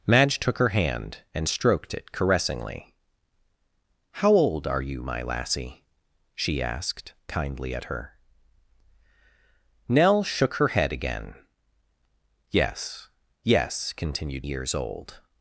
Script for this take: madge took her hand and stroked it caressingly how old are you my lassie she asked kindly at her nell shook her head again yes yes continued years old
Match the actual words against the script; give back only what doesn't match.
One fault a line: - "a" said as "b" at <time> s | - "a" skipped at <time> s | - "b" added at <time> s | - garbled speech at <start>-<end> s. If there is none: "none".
none